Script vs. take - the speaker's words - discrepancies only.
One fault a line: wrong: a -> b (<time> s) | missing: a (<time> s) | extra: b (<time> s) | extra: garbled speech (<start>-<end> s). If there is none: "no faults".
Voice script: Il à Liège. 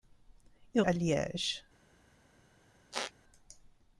no faults